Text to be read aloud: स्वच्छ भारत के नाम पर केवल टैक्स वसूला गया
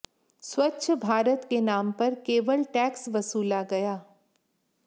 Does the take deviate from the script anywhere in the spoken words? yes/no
no